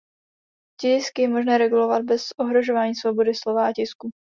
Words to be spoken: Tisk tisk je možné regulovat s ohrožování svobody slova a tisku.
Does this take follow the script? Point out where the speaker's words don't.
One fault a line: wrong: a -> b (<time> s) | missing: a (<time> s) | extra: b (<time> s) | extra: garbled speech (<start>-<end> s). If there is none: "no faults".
missing: tisk (1.2 s)
wrong: s -> bez (2.0 s)